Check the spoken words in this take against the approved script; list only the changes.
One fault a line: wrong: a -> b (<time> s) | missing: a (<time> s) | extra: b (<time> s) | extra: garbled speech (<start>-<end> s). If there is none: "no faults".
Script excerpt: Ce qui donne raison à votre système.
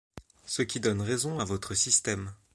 no faults